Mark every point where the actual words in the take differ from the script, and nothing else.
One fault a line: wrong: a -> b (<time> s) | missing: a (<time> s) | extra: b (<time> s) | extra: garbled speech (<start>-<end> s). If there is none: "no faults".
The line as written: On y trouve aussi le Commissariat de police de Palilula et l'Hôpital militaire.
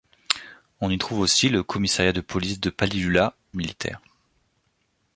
missing: et l'Hôpital (3.4 s)